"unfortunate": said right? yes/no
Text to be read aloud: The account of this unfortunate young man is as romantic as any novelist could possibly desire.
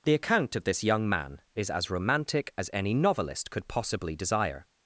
no